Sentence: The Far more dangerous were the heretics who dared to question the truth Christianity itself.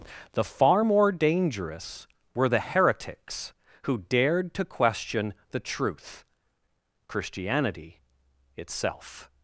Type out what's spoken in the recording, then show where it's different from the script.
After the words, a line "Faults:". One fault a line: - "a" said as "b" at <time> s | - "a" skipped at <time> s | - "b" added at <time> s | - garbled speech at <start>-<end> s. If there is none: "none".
The Far more dangerous were the heretics who dared to question the truth Christianity itself.
Faults:
none